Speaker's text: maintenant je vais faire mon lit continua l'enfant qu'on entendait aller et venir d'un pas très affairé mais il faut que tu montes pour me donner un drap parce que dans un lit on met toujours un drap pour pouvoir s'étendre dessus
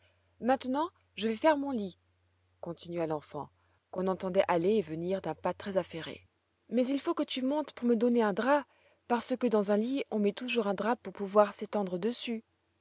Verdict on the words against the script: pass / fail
pass